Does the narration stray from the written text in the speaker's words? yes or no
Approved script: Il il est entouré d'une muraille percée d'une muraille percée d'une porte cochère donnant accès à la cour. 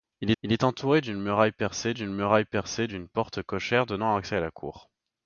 no